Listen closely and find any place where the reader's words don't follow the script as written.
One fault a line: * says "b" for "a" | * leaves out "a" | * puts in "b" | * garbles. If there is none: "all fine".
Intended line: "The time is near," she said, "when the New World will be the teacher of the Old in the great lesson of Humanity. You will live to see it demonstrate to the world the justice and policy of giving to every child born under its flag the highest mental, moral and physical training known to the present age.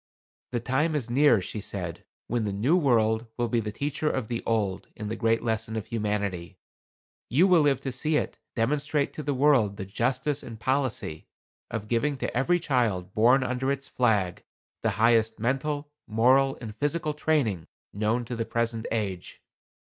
all fine